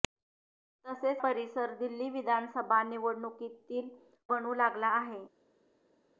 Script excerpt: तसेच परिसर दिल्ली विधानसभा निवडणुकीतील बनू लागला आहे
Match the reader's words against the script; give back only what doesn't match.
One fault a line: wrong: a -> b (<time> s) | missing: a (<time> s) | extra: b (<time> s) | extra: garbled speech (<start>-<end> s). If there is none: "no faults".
no faults